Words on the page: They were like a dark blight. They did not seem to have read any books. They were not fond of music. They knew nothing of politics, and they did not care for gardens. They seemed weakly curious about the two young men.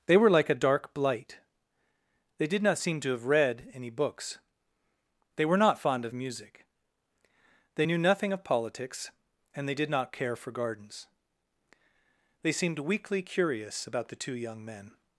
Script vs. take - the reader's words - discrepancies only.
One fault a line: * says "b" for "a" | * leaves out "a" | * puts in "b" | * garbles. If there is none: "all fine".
all fine